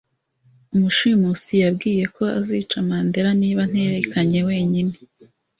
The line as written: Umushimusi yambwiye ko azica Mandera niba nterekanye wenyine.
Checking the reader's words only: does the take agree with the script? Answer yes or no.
yes